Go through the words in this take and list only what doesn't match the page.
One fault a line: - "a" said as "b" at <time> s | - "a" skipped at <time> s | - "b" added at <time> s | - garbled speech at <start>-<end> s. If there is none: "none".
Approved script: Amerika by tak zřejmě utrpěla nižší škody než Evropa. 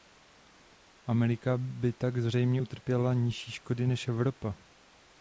none